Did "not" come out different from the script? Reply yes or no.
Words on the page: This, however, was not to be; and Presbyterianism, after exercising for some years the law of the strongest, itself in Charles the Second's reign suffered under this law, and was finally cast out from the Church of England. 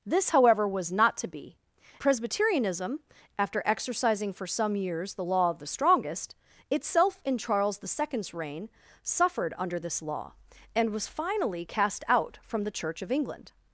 no